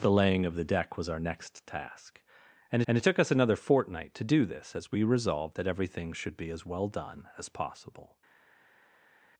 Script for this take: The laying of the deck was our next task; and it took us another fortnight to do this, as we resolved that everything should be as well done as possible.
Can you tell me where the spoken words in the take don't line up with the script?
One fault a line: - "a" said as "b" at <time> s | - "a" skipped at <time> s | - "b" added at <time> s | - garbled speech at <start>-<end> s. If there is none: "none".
- "and" added at 2.9 s